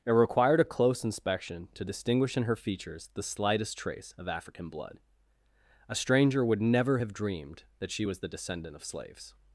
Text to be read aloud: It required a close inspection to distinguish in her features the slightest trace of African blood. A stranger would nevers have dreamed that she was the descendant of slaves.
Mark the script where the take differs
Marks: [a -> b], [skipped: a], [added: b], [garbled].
It required a close inspection to distinguish in her features the slightest trace of African blood. A stranger would [nevers -> never] have dreamed that she was the descendant of slaves.